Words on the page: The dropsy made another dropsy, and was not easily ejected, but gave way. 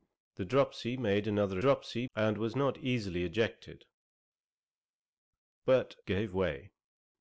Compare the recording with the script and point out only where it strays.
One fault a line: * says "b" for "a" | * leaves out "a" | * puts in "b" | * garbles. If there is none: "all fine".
all fine